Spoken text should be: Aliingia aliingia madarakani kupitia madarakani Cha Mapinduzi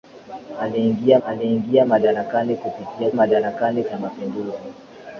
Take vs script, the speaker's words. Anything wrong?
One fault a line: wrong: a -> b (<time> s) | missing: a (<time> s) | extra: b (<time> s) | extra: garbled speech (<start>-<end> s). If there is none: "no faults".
no faults